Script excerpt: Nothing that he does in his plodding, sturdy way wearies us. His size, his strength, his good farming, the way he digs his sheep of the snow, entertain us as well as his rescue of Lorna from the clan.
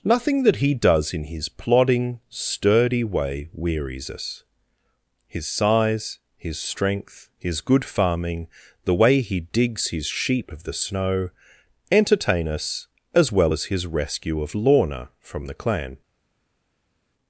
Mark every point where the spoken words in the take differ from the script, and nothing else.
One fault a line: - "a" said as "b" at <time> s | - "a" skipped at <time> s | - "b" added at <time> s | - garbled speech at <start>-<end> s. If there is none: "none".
none